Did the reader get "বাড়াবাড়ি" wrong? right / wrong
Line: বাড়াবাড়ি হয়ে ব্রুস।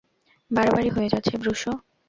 right